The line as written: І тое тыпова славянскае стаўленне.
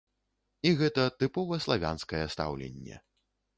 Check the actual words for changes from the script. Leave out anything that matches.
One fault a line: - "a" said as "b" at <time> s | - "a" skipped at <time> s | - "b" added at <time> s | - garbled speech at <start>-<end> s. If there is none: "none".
- "тое" said as "гэта" at 0.8 s